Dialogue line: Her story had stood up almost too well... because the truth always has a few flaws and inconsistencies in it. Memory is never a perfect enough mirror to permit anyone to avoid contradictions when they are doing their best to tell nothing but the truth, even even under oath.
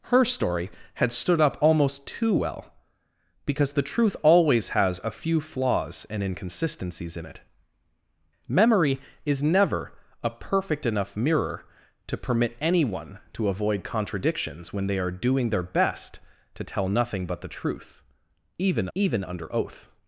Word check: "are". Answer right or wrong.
right